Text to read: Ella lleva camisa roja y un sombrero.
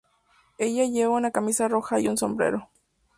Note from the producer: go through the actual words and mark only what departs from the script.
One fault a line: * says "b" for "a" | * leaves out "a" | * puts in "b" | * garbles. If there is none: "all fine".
* puts in "una"